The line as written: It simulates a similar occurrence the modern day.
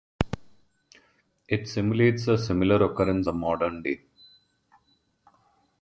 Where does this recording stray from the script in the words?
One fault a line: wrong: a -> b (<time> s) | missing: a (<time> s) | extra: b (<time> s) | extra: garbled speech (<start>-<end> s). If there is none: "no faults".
no faults